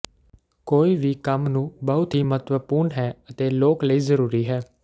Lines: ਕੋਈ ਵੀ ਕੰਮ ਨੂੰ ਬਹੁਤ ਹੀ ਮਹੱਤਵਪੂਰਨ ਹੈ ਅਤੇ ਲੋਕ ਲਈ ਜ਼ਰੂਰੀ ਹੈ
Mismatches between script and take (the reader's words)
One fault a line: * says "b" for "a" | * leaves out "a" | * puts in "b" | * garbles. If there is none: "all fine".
all fine